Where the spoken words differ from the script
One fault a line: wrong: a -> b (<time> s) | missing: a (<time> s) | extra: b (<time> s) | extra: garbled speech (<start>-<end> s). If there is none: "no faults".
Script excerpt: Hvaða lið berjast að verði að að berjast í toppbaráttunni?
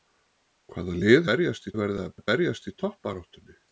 no faults